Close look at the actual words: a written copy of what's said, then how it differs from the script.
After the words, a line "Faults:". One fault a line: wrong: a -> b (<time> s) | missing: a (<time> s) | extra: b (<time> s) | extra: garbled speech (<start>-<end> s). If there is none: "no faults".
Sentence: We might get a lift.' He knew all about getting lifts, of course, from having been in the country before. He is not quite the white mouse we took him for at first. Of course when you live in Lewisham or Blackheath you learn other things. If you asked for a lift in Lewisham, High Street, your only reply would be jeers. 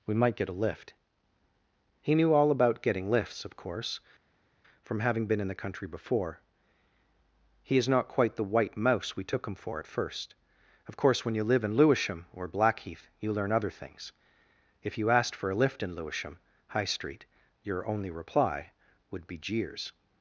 We might get a lift.' He knew all about getting lifts, of course, from having been in the country before. He is not quite the white mouse we took him for at first. Of course when you live in Lewisham or Blackheath you learn other things. If you asked for a lift in Lewisham, High Street, your only reply would be jeers.
Faults:
no faults